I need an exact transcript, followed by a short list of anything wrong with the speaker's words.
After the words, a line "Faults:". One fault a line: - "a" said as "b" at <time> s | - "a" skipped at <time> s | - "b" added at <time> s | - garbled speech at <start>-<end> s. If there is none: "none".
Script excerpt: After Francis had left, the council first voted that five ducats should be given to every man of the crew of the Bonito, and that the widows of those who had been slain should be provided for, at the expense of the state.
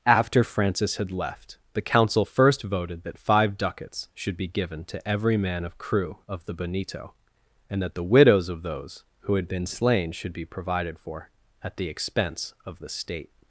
After Francis had left, the council first voted that five ducats should be given to every man of crew of the Bonito, and that the widows of those who had been slain should be provided for, at the expense of the state.
Faults:
- "the" skipped at 5.8 s